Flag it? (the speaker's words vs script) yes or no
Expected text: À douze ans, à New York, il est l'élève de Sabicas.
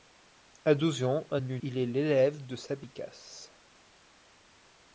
yes